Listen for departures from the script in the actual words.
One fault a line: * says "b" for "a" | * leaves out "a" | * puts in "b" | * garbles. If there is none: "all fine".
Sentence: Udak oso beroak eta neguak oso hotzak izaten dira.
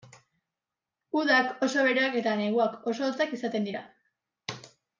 all fine